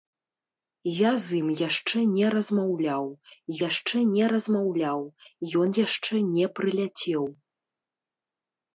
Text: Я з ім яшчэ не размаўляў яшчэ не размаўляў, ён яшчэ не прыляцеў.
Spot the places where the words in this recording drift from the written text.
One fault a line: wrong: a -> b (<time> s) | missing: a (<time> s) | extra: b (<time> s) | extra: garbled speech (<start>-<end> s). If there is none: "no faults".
no faults